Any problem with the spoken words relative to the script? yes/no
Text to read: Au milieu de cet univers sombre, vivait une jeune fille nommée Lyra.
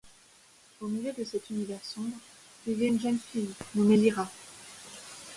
no